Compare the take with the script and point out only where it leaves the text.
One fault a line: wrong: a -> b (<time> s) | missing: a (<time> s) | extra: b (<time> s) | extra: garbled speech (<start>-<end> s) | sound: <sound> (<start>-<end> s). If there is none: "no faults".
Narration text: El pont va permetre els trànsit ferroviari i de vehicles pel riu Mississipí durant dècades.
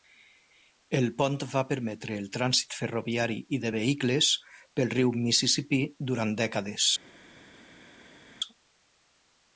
wrong: els -> el (2.2 s)